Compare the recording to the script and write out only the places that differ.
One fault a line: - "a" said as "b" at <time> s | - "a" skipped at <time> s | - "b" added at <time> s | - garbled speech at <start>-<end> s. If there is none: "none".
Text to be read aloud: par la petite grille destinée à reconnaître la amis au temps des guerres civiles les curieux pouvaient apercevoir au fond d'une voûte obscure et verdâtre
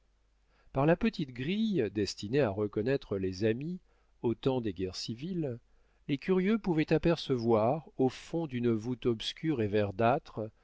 - "la" said as "les" at 3.2 s